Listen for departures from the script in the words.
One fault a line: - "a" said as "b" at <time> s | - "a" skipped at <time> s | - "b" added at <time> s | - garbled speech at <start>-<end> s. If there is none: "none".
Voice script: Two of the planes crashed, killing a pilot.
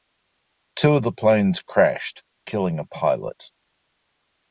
none